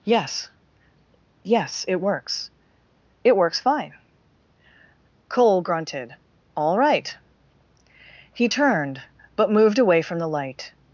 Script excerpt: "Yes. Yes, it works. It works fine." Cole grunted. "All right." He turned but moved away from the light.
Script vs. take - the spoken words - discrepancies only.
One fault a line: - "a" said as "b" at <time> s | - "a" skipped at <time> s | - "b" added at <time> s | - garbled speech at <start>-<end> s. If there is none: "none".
none